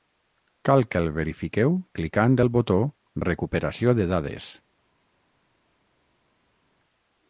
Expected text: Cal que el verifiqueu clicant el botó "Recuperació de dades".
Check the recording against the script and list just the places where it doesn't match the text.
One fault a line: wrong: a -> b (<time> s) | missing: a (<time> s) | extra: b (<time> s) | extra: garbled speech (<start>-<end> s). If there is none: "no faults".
no faults